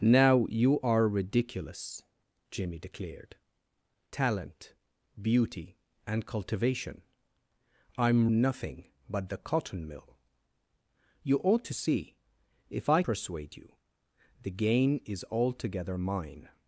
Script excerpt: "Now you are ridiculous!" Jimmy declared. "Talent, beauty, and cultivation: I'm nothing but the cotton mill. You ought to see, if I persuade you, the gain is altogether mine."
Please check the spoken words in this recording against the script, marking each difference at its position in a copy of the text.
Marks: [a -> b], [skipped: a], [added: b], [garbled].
"Now you are ridiculous!" Jimmy declared. "Talent, beauty, and cultivation: I'm nothing but the cotton mill. You ought to see, if I persuade you, the gain is altogether mine."